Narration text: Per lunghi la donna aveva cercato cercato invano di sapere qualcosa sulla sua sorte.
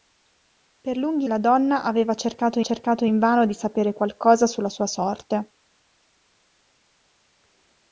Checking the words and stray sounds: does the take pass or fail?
pass